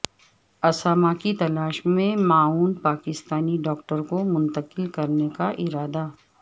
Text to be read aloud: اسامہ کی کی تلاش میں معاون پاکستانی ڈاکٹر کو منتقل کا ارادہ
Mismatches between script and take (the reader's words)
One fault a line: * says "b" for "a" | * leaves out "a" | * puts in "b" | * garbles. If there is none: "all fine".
* leaves out "کی"
* puts in "کرنے"